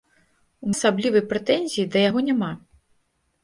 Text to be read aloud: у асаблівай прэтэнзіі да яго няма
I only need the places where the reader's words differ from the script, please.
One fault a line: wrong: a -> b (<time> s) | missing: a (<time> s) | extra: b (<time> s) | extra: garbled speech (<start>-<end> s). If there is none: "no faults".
no faults